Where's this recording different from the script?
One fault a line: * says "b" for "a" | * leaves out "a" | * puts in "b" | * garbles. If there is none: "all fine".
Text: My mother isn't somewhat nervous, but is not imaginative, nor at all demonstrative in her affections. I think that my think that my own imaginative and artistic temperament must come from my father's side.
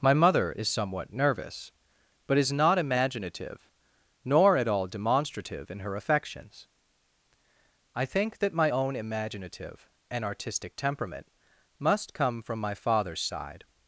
* says "is" for "isn't"
* leaves out "think that my"